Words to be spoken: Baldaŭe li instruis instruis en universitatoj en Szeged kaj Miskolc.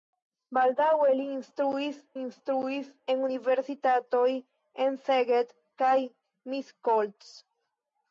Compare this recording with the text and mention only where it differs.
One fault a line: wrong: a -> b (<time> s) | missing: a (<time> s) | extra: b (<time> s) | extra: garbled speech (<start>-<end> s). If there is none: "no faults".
no faults